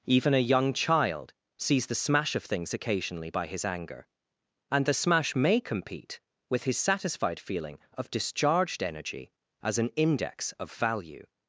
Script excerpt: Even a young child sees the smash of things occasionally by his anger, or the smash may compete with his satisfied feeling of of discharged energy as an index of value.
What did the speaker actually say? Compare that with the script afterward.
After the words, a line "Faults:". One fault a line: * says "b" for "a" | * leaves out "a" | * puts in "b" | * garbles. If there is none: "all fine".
Even a young child sees the smash of things occasionally by his anger, and the smash may compete with his satisfied feeling of discharged energy as an index of value.
Faults:
* says "and" for "or"
* leaves out "of"